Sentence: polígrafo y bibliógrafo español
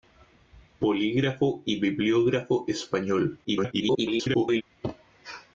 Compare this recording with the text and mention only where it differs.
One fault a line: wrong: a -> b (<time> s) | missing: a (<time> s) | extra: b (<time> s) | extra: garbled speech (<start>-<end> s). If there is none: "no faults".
extra: garbled speech (3.4-4.6 s)